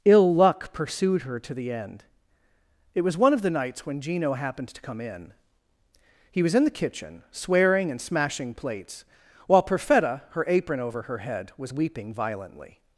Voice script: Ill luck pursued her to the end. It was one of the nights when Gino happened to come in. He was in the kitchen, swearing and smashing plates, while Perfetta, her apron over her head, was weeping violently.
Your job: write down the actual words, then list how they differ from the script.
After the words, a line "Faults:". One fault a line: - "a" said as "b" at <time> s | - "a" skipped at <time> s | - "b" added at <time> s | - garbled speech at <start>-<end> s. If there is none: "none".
Ill luck pursued her to the end. It was one of the nights when Gino happened to come in. He was in the kitchen, swearing and smashing plates, while Perfetta, her apron over her head, was weeping violently.
Faults:
none